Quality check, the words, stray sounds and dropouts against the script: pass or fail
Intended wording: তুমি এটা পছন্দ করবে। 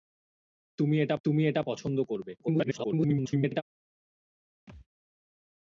fail